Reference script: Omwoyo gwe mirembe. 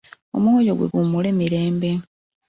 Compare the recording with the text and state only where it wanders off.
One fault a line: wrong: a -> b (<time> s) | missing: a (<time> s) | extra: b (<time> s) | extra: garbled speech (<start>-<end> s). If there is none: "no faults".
extra: guwummule (0.9 s)